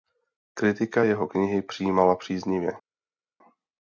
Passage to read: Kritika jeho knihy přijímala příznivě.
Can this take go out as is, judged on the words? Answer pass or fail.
pass